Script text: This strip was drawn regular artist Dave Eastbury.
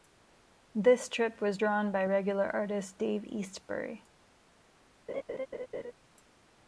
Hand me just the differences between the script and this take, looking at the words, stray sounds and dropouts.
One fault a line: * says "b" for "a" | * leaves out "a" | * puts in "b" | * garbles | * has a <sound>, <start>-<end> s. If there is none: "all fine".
* puts in "by"
* has a laugh, 5.1-5.9 s